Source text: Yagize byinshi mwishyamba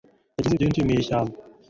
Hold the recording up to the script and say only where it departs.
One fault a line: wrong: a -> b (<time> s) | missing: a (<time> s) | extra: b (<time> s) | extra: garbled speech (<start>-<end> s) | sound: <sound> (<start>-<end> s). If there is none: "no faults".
no faults